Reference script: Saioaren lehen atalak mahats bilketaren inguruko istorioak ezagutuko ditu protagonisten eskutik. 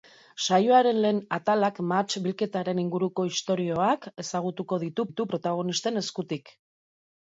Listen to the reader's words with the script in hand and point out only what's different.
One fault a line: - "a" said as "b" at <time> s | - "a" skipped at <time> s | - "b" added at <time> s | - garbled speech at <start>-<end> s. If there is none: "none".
- "ditu" added at 5.1 s